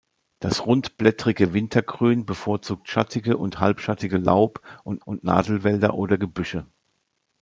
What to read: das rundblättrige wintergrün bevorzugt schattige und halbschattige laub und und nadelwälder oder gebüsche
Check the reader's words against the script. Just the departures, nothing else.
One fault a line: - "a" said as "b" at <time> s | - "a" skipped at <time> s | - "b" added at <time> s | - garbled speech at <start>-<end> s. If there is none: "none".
none